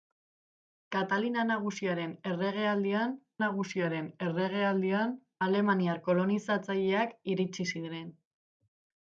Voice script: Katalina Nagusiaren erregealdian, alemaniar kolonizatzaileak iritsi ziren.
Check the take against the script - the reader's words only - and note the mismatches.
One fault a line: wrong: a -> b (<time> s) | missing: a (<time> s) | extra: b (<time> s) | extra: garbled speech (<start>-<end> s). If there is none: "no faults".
extra: Nagusiaren erregealdian (3.4 s)